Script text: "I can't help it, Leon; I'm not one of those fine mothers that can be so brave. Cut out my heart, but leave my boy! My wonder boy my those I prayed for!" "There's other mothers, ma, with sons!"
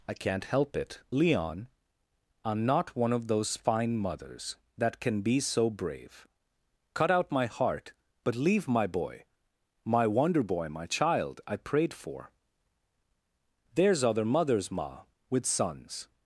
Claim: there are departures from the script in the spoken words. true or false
true